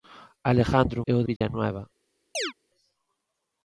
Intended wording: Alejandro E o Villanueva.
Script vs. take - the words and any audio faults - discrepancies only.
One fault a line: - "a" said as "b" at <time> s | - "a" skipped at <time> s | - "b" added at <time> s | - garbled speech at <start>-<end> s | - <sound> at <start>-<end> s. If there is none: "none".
- dropout at 1.4-1.4 s
- chirp at 2.3-2.5 s